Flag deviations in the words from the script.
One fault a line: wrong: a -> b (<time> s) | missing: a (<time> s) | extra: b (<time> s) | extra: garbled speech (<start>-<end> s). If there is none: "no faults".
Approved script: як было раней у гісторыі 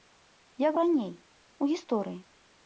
missing: было (0.7 s)